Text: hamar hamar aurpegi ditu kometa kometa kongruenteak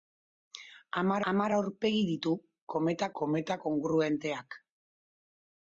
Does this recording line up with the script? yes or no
yes